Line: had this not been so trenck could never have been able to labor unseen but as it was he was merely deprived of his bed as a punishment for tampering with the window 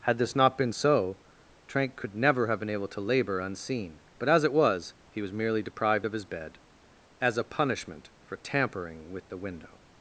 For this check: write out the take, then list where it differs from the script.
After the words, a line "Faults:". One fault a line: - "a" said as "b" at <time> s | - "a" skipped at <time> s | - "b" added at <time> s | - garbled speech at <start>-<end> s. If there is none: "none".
had this not been so trenck could never have been able to labor unseen but as it was he was merely deprived of his bed as a punishment for tampering with the window
Faults:
none